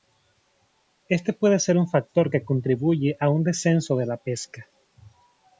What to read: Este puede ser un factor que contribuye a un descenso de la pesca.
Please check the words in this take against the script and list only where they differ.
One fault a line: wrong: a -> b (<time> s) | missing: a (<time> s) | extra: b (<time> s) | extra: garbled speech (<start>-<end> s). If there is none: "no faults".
no faults